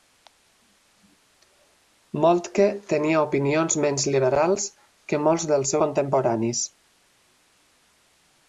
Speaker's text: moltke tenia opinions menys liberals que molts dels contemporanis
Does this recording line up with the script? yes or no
yes